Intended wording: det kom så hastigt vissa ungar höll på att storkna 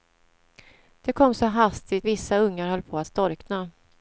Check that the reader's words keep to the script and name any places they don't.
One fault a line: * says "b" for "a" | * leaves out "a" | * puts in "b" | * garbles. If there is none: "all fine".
all fine